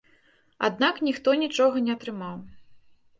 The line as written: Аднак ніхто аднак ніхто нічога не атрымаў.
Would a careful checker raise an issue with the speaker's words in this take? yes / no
yes